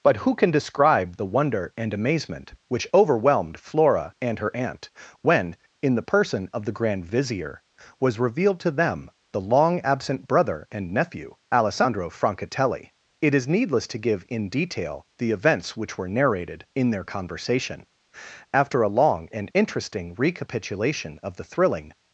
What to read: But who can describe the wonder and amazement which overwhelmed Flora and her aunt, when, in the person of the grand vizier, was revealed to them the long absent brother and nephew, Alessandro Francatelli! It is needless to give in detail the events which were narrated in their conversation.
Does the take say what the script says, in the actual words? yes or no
no